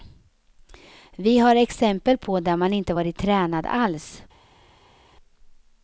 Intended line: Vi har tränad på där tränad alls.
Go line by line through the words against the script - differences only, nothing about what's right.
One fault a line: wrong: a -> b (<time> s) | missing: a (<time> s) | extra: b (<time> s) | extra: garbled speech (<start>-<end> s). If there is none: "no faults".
wrong: tränad -> exempel (1.6 s)
extra: man inte varit (2.6 s)